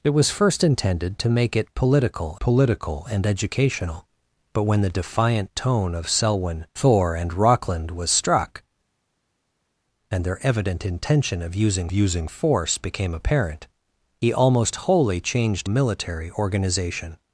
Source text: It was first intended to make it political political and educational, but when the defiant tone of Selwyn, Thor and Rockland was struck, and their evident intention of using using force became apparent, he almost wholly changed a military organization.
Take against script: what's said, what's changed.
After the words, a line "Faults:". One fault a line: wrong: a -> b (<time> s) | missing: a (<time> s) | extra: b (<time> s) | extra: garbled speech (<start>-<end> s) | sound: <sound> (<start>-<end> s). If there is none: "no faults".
It was first intended to make it political political and educational, but when the defiant tone of Selwyn, Thor and Rockland was struck, and their evident intention of using using force became apparent, he almost wholly changed a military organization.
Faults:
no faults